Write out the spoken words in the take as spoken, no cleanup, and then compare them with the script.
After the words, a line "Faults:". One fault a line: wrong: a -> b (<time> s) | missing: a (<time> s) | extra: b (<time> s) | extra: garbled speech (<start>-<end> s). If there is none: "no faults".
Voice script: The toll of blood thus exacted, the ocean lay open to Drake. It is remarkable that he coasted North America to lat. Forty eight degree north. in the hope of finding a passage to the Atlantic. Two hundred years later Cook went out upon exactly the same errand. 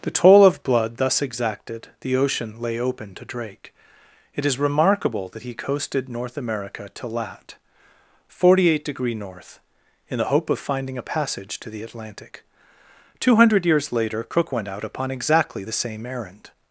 The toll of blood thus exacted, the ocean lay open to Drake. It is remarkable that he coasted North America to lat. Forty eight degree north. in the hope of finding a passage to the Atlantic. Two hundred years later Cook went out upon exactly the same errand.
Faults:
no faults